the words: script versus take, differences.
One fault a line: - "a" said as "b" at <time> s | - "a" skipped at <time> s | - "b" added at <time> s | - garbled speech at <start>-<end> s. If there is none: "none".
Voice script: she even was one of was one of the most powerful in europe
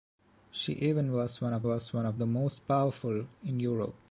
none